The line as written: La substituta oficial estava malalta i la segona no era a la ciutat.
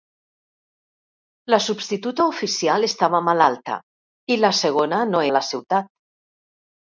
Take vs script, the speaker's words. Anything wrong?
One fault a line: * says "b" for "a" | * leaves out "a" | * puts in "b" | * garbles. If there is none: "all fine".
* leaves out "era"